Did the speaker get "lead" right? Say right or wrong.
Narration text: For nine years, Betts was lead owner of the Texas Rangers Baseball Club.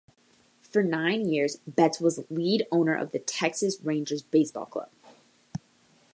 right